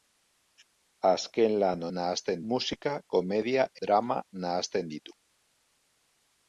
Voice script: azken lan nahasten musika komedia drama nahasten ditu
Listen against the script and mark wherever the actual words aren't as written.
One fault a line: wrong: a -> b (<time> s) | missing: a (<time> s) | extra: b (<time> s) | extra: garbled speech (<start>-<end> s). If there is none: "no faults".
no faults